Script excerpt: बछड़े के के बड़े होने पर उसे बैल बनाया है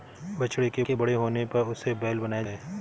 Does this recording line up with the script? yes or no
yes